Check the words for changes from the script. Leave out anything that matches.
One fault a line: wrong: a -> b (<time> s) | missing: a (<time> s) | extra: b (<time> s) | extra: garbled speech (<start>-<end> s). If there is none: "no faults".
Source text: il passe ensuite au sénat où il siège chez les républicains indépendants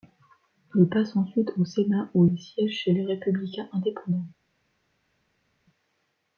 no faults